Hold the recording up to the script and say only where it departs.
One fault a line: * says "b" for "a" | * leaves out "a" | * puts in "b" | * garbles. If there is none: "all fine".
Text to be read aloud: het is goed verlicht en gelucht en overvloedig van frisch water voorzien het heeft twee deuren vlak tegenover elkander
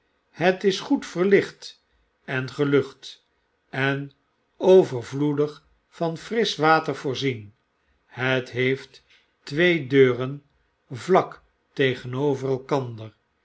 all fine